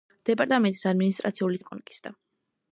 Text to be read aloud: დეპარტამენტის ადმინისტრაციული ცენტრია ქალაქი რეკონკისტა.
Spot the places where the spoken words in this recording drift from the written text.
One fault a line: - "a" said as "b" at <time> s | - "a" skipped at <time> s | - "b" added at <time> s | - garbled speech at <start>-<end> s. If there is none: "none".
- "ცენტრია ქალაქი" skipped at 1.6 s